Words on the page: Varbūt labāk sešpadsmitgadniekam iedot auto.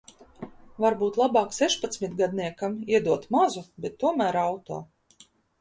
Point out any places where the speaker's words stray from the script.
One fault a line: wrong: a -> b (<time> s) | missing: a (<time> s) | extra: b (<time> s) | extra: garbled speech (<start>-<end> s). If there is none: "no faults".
extra: mazu bet tomēr (3.4 s)